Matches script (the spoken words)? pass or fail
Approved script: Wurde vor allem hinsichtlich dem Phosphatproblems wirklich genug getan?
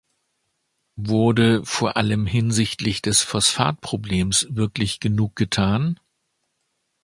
fail